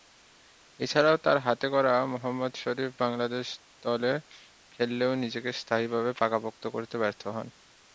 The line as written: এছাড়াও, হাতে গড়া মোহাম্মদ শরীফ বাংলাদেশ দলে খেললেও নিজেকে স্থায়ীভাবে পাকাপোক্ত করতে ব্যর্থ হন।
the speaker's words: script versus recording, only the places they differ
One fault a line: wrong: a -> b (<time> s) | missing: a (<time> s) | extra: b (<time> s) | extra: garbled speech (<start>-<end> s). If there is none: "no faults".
extra: তার (1.2 s)